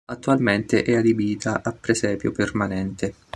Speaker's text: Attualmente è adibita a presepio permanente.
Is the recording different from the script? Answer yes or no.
no